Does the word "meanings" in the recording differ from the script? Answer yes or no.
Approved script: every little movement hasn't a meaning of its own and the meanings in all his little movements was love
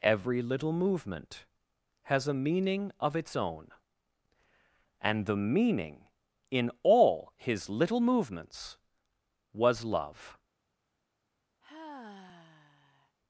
yes